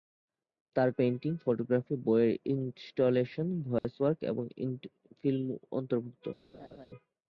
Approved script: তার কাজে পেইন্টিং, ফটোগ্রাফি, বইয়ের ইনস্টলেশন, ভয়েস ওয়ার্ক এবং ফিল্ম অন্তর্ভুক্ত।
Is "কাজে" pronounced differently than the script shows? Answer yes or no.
yes